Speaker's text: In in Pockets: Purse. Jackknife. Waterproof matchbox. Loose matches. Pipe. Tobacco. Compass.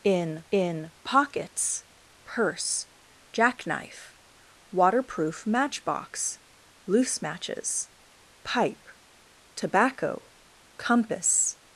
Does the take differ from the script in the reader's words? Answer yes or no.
no